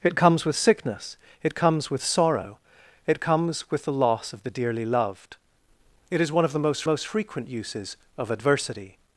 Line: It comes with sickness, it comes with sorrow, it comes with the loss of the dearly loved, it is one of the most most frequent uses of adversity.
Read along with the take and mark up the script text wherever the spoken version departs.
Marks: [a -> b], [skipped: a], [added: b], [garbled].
It comes with sickness, it comes with sorrow, it comes with the loss of the dearly loved, it is one of the most most frequent uses of adversity.